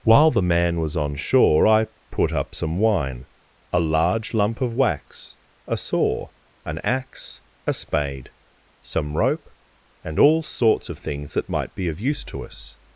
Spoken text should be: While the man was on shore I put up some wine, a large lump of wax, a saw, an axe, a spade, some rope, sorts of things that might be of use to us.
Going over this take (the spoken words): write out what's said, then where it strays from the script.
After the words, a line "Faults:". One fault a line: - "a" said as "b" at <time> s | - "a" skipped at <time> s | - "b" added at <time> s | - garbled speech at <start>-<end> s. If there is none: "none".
While the man was on shore I put up some wine, a large lump of wax, a saw, an axe, a spade, some rope, and all sorts of things that might be of use to us.
Faults:
- "and all" added at 10.0 s